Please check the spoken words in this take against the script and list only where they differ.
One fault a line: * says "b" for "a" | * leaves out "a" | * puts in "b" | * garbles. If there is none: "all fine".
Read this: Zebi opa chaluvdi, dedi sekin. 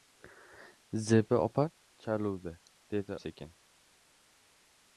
all fine